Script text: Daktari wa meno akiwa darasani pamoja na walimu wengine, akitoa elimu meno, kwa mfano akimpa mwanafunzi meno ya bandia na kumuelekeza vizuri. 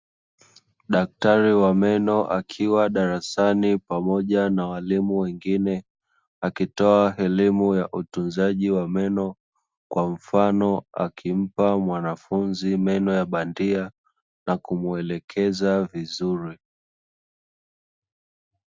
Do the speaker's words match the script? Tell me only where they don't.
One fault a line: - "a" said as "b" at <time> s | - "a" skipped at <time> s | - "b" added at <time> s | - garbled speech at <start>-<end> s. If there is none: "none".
- "ya utunzaji wa" added at 7.8 s